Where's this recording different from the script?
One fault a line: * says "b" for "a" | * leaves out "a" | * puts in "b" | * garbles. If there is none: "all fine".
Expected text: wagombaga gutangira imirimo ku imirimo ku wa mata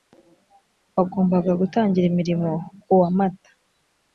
* leaves out "imirimo ku"